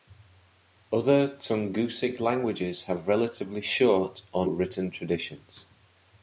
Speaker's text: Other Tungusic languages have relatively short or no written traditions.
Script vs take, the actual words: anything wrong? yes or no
yes